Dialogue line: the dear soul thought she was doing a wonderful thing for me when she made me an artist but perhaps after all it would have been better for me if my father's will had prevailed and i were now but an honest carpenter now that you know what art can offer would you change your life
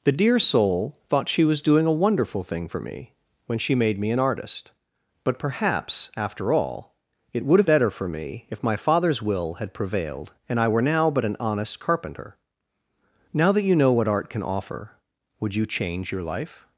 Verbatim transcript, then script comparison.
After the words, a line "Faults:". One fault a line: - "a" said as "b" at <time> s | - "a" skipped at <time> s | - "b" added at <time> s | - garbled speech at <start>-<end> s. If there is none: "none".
the dear soul thought she was doing a wonderful thing for me when she made me an artist but perhaps after all it would have better for me if my father's will had prevailed and i were now but an honest carpenter now that you know what art can offer would you change your life
Faults:
- "been" skipped at 7.7 s